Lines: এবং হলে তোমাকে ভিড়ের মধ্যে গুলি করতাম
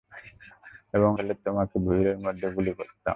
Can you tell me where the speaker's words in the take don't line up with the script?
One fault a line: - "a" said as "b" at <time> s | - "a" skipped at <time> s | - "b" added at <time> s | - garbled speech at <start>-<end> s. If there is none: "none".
none